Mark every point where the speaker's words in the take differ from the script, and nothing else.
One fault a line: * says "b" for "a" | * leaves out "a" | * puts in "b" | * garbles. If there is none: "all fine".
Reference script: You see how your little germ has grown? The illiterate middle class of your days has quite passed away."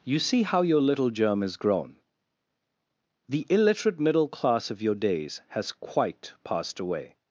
all fine